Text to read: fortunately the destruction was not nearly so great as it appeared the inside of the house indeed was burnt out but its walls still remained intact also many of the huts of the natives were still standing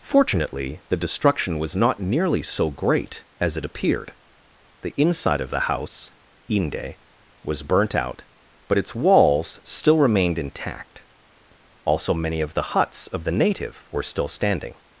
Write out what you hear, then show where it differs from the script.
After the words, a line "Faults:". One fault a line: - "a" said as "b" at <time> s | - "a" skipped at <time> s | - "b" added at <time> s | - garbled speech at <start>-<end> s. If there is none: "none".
fortunately the destruction was not nearly so great as it appeared the inside of the house inde was burnt out but its walls still remained intact also many of the huts of the native were still standing
Faults:
- "indeed" said as "inde" at 6.5 s
- "natives" said as "native" at 13.3 s